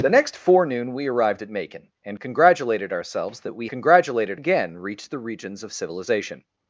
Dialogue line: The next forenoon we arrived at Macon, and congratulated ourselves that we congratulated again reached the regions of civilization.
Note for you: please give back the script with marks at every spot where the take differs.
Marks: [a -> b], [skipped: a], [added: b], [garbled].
The next forenoon we arrived at Macon, and congratulated ourselves that we congratulated again reached the regions of civilization.